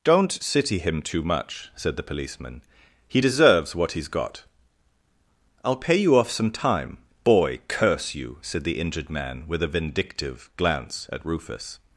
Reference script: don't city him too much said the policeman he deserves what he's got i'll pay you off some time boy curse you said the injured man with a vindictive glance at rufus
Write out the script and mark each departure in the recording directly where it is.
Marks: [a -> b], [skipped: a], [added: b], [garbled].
don't city him too much said the policeman he deserves what he's got i'll pay you off some time boy curse you said the injured man with a vindictive glance at rufus